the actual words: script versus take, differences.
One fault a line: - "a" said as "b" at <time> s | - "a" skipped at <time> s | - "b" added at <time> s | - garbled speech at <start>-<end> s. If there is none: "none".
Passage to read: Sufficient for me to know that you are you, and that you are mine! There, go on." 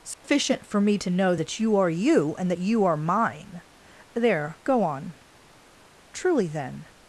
- "Truly then" added at 6.1 s